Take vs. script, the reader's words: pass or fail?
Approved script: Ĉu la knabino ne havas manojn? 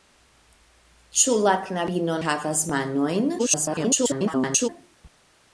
fail